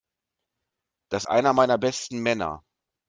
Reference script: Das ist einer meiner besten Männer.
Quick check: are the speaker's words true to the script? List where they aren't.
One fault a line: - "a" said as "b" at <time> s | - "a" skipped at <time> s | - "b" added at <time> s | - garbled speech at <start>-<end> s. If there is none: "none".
- "ist" skipped at 1.2 s